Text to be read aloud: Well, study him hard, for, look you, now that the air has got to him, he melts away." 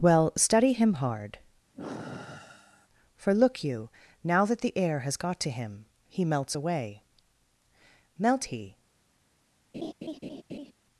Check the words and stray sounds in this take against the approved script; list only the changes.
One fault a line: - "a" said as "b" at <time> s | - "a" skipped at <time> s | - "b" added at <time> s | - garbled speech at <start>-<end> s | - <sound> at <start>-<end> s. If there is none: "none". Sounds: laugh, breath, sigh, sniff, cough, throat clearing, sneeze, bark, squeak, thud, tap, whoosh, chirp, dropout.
- sigh at 1.7-2.9 s
- "Melt he" added at 8.2 s
- laugh at 9.7-10.7 s